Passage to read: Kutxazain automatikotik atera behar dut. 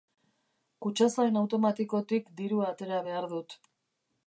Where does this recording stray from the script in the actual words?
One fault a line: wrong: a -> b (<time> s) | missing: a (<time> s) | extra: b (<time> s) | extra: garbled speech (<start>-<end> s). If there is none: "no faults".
extra: dirua (2.4 s)